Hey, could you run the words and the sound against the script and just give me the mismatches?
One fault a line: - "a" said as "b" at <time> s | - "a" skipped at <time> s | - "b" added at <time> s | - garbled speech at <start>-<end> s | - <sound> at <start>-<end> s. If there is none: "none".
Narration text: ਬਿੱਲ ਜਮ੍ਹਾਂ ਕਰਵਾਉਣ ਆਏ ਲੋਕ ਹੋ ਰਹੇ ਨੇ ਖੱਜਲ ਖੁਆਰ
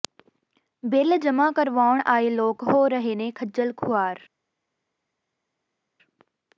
none